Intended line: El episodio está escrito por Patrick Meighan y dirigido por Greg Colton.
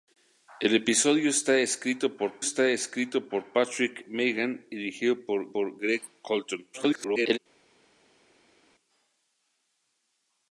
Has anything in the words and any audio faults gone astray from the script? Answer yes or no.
yes